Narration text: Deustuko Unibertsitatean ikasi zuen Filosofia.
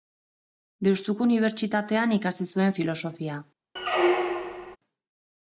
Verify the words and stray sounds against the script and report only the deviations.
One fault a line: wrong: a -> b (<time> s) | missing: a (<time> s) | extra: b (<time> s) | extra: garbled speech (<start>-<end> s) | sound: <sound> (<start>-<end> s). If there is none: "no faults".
sound: squeak (3.8-4.8 s)